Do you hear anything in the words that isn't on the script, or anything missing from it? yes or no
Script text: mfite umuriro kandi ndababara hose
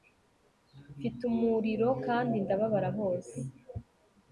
no